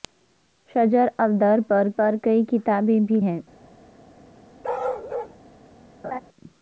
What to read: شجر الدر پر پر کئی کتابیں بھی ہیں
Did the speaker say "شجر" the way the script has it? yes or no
yes